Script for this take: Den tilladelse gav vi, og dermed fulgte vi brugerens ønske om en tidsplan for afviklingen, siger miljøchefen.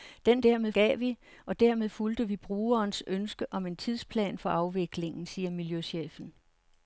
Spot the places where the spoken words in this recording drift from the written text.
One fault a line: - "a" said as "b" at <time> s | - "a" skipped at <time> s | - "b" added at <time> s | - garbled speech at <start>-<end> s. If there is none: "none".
- "tilladelse" said as "dermed" at 0.4 s